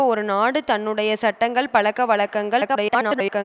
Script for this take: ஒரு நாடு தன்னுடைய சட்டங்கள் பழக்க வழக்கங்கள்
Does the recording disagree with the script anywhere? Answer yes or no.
yes